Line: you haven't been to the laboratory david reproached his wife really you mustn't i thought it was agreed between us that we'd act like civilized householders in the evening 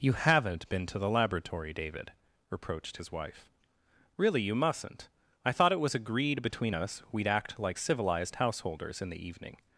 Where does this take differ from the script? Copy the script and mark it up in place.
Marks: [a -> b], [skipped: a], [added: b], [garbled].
you haven't been to the laboratory david reproached his wife really you mustn't i thought it was agreed between us [skipped: that] we'd act like civilized householders in the evening